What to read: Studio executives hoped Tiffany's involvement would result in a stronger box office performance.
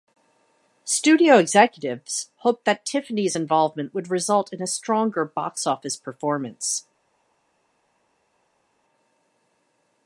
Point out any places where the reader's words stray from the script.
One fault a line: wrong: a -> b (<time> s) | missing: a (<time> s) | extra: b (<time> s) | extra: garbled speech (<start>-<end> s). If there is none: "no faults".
extra: that (2.6 s)